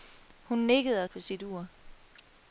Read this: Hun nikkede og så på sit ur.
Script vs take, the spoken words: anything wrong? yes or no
yes